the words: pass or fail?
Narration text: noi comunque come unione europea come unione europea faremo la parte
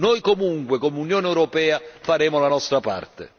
fail